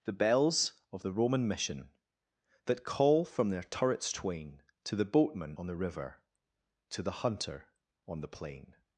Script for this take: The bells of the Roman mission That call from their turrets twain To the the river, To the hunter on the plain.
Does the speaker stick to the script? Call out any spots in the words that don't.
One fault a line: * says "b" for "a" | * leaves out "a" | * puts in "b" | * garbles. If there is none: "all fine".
* puts in "boatman on"